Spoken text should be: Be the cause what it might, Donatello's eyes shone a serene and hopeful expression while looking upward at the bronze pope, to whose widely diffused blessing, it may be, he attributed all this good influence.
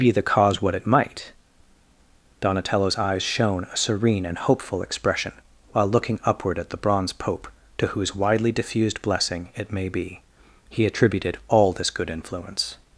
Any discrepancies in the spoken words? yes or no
no